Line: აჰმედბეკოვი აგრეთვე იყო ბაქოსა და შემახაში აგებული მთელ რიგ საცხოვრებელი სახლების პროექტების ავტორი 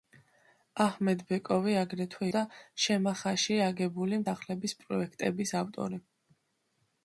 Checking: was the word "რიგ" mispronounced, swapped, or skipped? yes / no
yes